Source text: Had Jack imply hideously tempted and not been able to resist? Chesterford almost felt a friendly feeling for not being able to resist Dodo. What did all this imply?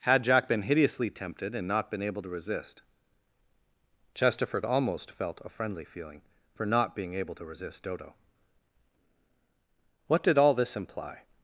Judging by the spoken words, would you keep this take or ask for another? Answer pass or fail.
fail